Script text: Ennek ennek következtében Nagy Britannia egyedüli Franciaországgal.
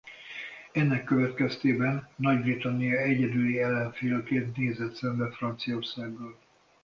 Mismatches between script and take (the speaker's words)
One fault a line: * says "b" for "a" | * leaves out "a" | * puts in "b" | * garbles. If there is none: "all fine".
* leaves out "ennek"
* puts in "ellenfélként nézett szembe"